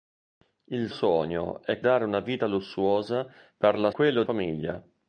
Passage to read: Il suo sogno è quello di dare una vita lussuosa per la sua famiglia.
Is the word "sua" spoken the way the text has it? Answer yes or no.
no